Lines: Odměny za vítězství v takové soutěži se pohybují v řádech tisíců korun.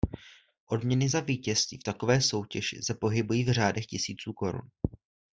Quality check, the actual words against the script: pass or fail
pass